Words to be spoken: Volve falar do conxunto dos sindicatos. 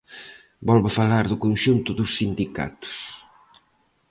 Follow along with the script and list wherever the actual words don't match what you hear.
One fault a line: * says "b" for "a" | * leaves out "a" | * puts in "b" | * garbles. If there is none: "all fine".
all fine